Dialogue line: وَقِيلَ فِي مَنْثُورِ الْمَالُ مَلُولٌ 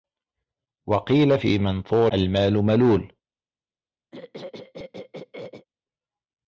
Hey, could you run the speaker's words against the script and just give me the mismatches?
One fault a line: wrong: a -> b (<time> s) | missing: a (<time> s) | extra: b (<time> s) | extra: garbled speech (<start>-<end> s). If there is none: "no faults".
no faults